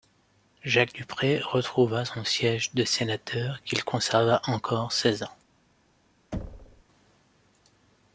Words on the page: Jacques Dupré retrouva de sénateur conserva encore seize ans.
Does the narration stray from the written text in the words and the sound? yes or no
yes